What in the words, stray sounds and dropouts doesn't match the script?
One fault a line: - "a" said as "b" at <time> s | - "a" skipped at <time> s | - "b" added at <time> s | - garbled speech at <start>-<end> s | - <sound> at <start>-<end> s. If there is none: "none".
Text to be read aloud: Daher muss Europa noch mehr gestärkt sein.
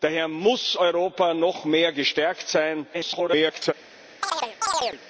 - garbled speech at 2.9-3.7 s
- chirp at 4.2-5.0 s